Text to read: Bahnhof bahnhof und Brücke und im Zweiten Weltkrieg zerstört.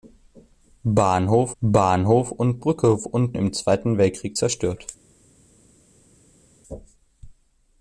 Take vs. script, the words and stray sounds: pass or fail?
pass